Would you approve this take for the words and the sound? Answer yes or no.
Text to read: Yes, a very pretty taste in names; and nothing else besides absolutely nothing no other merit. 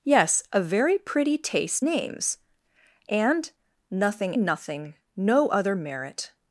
no